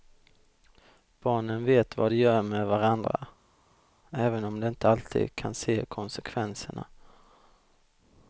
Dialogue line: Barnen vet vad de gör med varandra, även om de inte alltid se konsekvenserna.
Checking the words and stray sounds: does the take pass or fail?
fail